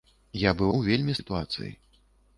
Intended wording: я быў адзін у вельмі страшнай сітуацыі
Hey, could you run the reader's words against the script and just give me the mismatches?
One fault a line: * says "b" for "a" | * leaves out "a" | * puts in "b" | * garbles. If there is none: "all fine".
* leaves out "адзін"
* leaves out "страшнай"